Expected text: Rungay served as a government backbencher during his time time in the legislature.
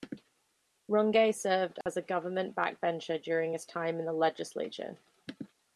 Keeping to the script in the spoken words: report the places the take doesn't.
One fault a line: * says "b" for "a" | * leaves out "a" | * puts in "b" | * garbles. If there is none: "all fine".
* leaves out "time"